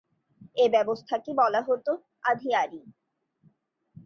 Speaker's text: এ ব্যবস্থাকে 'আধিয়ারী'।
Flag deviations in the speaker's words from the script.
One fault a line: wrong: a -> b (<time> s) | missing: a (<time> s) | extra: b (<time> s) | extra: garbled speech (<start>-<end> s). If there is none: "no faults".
extra: বলা হতো (1.3 s)